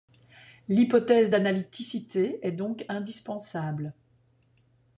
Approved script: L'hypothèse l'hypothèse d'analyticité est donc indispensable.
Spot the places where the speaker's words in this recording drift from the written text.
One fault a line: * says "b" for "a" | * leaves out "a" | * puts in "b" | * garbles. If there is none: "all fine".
* leaves out "l'hypothèse"